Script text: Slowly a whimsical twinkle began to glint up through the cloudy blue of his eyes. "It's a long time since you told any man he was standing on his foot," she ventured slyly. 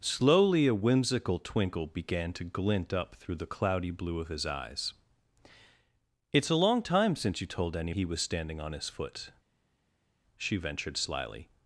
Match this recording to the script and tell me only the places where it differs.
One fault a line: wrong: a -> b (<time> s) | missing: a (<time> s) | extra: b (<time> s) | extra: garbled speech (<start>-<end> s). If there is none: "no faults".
missing: man (7.9 s)